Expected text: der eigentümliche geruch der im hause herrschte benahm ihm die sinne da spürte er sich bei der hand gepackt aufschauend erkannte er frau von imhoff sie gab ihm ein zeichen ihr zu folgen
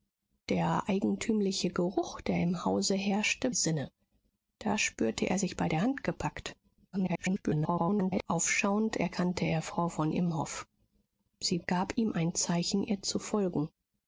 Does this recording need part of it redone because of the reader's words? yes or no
yes